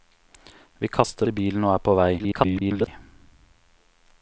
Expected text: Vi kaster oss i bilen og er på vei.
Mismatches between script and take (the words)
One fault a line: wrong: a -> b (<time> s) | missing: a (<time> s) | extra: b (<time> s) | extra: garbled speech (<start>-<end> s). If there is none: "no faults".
missing: oss (1.3 s)
extra: garbled speech (2.2-2.9 s)